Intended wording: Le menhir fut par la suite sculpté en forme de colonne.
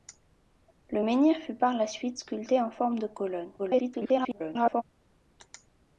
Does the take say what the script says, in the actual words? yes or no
no